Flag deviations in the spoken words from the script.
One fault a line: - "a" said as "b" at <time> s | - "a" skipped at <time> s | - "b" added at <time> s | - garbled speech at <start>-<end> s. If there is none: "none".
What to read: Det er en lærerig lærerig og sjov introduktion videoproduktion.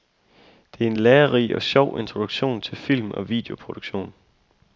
- "lærerig" skipped at 1.6 s
- "til film og" added at 2.6 s